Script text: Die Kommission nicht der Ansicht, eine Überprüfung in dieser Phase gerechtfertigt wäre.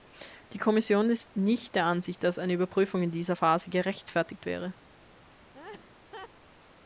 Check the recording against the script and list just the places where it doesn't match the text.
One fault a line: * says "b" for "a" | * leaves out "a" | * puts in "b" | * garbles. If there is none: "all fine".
* puts in "ist"
* puts in "dass"